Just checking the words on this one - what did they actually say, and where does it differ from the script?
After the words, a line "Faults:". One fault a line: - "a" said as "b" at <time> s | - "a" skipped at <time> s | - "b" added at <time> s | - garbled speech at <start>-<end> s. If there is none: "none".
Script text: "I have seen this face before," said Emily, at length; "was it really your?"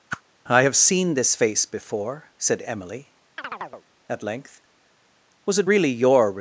"I have seen this face before," said Emily, at length; "was it really your?"
Faults:
none